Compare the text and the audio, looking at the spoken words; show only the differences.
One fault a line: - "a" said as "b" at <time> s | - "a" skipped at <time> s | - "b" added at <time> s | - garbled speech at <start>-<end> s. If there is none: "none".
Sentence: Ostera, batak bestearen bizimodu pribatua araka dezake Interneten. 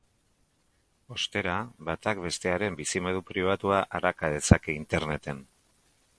none